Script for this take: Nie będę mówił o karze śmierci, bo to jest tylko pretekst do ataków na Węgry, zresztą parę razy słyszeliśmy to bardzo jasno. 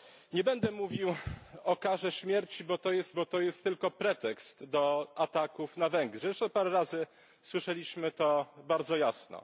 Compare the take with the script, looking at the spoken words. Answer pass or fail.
fail